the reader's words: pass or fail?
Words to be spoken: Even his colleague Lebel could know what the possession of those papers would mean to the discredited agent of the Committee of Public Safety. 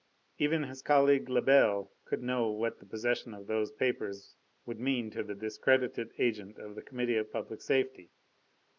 pass